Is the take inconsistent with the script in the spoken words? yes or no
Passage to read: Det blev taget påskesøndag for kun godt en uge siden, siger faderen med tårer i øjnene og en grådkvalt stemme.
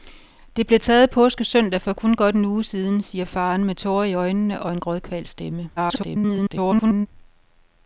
yes